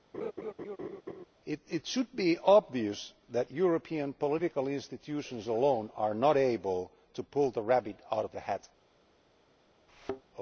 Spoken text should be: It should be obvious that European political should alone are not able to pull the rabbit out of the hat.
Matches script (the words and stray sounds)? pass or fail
fail